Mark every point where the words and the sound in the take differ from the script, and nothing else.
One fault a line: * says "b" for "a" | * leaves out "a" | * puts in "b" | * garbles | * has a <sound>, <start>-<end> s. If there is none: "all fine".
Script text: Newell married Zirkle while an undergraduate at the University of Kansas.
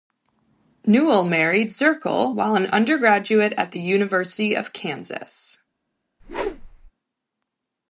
* has a whoosh, 6.2-6.9 s